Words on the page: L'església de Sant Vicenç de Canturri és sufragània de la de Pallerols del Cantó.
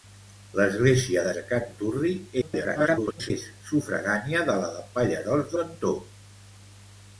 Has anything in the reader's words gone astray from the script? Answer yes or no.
yes